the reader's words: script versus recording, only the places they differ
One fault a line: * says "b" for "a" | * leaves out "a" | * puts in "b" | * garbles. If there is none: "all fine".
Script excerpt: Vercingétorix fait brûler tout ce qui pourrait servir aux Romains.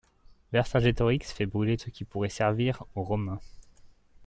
* leaves out "tout"